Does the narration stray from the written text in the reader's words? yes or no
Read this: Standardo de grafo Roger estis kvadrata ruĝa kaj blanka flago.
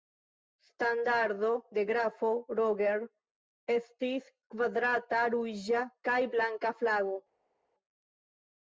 no